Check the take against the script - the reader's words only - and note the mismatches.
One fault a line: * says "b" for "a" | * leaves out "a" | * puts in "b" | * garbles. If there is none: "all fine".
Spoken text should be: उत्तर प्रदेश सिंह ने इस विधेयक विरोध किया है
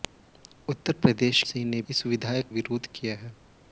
all fine